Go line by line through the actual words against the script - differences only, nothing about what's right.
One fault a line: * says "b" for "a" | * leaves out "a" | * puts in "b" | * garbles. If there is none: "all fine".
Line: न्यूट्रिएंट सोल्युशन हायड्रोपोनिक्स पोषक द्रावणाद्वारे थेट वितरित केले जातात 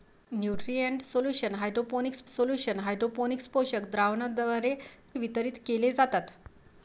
* puts in "सोल्युशन हायड्रोपोनिक्स"
* leaves out "थेट"